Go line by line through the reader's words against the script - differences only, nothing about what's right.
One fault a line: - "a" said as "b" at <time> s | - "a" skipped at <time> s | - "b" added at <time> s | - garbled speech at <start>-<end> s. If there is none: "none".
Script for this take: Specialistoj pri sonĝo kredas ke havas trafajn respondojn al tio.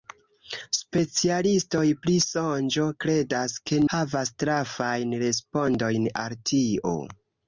none